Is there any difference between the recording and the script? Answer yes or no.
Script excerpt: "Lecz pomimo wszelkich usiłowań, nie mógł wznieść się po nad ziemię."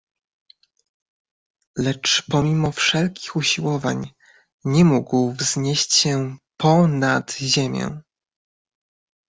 no